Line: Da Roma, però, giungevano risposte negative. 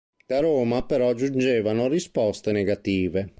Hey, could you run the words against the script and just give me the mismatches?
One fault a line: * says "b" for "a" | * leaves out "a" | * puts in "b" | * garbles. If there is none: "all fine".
all fine